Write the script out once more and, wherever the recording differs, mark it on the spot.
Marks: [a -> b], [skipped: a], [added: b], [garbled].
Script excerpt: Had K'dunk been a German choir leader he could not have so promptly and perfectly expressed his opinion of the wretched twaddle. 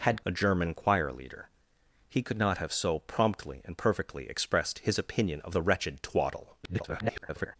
Had [skipped: K'dunk been] a German choir leader he could not have so promptly and perfectly expressed his opinion of the wretched twaddle. [garbled]